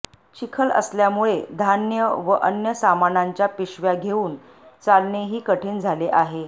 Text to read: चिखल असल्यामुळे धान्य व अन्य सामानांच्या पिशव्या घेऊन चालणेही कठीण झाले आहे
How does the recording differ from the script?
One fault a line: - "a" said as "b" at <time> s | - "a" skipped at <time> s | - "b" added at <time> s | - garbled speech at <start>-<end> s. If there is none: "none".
none